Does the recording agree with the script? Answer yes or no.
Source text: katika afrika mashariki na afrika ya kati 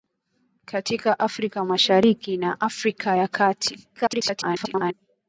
no